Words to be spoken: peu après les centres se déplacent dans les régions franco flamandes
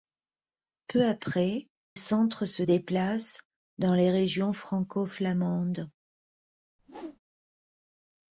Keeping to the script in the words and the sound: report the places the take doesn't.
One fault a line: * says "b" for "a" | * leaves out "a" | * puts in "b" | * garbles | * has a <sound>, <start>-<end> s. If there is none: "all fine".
* leaves out "les"
* has a whoosh, 6.8-7.2 s